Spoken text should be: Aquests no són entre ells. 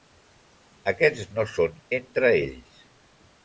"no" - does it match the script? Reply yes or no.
yes